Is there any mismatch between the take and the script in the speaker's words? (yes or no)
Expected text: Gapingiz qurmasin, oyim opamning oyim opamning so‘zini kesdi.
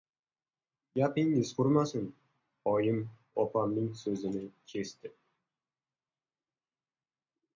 yes